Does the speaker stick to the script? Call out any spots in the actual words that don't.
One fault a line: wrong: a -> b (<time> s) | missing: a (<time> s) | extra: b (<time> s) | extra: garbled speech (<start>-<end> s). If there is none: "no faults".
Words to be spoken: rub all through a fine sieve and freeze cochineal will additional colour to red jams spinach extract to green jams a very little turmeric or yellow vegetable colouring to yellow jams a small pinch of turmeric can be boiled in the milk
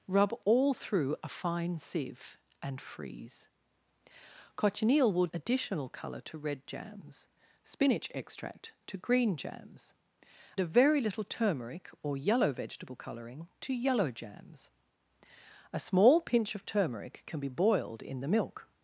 no faults